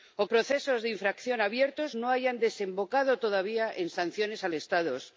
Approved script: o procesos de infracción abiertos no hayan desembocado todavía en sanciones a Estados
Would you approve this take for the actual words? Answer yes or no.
yes